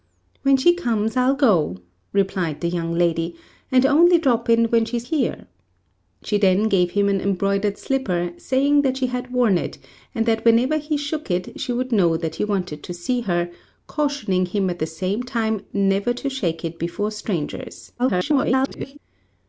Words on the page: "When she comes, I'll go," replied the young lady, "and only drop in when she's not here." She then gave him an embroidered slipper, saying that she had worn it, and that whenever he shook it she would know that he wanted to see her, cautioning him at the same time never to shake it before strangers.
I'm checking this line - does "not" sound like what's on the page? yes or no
no